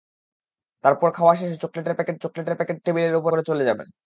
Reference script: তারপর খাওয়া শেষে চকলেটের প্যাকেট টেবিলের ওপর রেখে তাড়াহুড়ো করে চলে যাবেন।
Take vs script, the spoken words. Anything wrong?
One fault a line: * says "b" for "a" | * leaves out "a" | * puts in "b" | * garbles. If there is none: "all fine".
* puts in "চকলেটের প্যাকেট"
* leaves out "রেখে তাড়াহুড়ো"